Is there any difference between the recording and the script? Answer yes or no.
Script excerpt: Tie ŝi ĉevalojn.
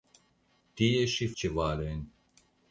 no